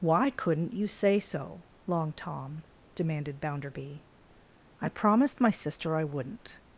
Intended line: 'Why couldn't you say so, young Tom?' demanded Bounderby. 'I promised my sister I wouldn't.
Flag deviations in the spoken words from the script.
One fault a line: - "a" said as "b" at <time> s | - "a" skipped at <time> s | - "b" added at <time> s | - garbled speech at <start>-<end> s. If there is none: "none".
- "young" said as "long" at 1.9 s